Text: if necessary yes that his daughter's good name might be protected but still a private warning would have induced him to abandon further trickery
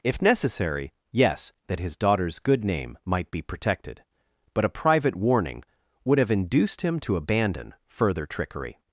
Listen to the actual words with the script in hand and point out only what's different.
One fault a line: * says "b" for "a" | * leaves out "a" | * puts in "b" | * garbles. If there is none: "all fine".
* leaves out "still"